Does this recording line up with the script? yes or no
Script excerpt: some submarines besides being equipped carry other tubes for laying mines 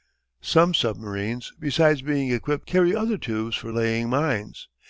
yes